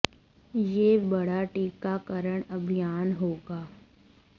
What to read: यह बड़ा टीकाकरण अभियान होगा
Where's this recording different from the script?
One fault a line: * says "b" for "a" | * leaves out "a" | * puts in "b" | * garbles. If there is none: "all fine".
all fine